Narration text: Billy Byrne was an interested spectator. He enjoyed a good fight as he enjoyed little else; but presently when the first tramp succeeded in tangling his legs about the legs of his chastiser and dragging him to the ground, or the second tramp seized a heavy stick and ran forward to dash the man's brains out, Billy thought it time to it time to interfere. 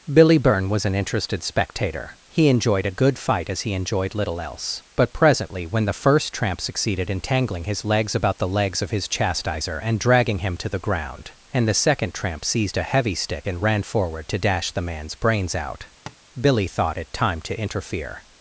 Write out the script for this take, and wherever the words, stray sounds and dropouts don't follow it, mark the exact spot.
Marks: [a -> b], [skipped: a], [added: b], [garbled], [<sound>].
Billy Byrne was an interested spectator. He enjoyed a good fight as he enjoyed little else; but presently when the first tramp succeeded in tangling his legs about the legs of his chastiser and dragging him to the ground, [or -> and] the second tramp seized a heavy stick and ran forward to dash the man's brains out, [tap] Billy thought it time to [skipped: it time to] interfere.